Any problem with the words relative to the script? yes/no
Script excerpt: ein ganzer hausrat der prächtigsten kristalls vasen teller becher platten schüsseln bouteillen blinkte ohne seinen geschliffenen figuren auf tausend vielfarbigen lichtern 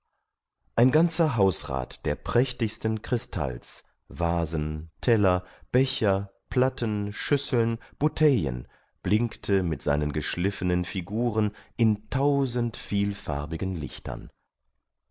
yes